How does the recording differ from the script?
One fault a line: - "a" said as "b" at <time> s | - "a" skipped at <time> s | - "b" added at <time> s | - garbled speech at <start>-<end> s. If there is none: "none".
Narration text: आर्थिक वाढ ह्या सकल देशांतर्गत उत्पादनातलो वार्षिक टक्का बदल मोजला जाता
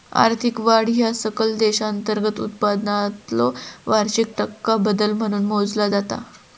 - "म्हणून" added at 5.1 s